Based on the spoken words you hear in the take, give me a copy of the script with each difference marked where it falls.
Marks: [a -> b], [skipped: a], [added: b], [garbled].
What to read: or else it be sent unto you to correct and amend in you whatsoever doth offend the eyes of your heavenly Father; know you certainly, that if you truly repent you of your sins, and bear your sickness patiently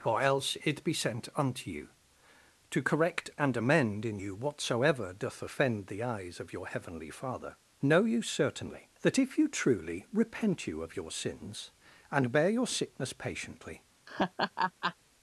or else it be sent unto you to correct and amend in you whatsoever doth offend the eyes of your heavenly Father; know you certainly, that if you truly repent you of your sins, and bear your sickness patiently